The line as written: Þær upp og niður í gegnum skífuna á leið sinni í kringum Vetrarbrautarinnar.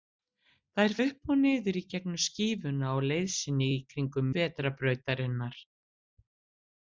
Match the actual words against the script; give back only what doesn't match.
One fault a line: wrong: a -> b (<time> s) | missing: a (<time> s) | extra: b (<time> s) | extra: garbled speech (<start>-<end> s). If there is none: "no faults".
no faults